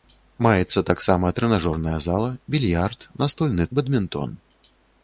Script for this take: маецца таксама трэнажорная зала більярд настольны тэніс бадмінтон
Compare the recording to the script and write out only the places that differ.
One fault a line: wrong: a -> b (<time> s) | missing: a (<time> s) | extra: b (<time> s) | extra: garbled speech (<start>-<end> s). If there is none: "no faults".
missing: тэніс (3.7 s)